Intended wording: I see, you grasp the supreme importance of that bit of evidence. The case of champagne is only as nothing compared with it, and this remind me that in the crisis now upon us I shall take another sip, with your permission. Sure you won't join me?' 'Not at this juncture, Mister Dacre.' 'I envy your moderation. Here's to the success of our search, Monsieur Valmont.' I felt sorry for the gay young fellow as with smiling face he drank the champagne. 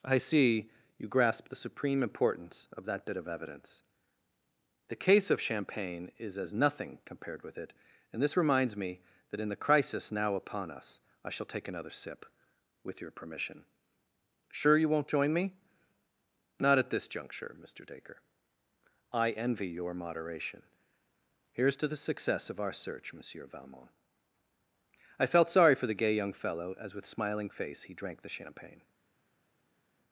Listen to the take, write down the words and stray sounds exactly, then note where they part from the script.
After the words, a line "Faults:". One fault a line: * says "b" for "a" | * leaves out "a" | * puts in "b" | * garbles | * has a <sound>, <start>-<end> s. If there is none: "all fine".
I see, you grasp the supreme importance of that bit of evidence. The case of champagne is as nothing compared with it, and this reminds me that in the crisis now upon us I shall take another sip, with your permission. Sure you won't join me?' 'Not at this juncture, Mister Dacre.' 'I envy your moderation. Here's to the success of our search, Monsieur Valmont.' I felt sorry for the gay young fellow as with smiling face he drank the champagne.
Faults:
* leaves out "only"
* says "reminds" for "remind"